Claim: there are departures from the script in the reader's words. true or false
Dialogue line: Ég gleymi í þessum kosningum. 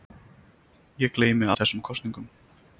false